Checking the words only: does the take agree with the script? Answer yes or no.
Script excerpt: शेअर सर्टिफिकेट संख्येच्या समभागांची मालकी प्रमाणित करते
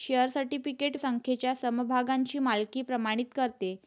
yes